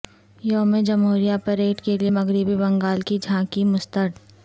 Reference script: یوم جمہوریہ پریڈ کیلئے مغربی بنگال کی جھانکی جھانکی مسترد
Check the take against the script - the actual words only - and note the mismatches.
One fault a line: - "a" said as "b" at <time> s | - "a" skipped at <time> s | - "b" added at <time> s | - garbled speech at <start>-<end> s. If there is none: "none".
- "جھانکی" skipped at 3.6 s